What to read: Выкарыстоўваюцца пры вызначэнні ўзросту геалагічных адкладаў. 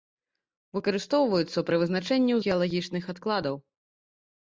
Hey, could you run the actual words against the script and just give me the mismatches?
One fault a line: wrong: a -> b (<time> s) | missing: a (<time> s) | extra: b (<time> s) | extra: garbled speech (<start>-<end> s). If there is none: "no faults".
missing: ўзросту (2.4 s)